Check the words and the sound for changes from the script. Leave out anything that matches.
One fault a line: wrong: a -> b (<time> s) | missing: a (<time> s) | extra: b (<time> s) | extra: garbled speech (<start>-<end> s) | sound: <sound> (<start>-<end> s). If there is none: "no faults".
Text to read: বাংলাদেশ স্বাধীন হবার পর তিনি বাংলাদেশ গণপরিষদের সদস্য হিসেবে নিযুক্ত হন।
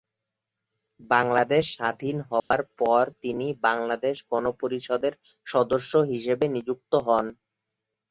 sound: dropout (2.4-2.5 s)